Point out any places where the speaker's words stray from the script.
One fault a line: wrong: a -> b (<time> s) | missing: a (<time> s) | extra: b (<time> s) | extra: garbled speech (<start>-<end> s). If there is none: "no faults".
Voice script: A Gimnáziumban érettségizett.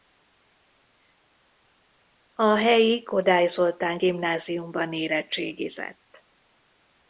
extra: helyi Kodály Zoltán (2.6 s)